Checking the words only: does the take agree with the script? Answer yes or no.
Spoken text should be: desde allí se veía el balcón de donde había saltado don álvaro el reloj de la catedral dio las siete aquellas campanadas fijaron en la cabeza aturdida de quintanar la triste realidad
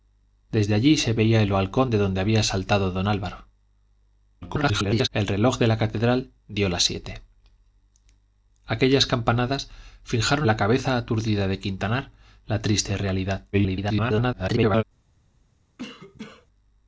no